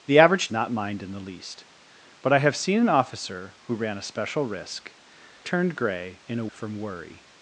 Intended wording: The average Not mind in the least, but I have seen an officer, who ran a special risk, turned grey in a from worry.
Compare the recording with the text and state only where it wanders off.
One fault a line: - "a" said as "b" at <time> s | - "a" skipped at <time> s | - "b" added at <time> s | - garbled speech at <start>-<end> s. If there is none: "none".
none